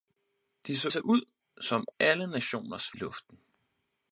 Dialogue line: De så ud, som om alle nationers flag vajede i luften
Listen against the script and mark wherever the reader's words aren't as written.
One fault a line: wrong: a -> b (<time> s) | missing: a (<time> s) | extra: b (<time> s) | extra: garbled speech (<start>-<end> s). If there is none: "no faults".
extra: så (0.9 s)
missing: om (1.9 s)
missing: flag vajede (2.9 s)